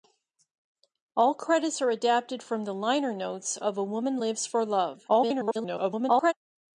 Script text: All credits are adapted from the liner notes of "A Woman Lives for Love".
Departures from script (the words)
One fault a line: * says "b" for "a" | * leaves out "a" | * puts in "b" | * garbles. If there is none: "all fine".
* garbles